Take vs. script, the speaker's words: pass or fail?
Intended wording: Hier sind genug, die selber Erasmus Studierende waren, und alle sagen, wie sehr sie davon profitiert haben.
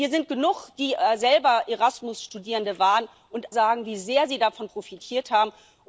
fail